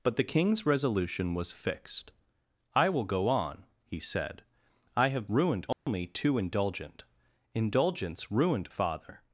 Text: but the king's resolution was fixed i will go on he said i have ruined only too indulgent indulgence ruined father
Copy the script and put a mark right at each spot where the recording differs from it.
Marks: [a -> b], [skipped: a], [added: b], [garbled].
but the king's resolution was fixed i will go on he said i have ruined only too indulgent indulgence ruined father